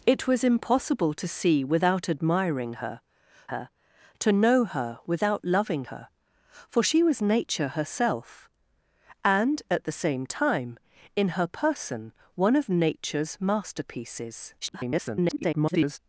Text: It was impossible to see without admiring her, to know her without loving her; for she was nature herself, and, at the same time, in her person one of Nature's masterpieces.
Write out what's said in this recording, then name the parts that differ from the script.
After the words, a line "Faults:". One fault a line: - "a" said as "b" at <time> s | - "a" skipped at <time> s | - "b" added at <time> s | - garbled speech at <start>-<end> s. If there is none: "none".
It was impossible to see without admiring her her, to know her without loving her; for she was nature herself, and, at the same time, in her person one of Nature's masterpieces. [garbled]
Faults:
- "her" added at 3.5 s
- garbled speech at 14.6-16.0 s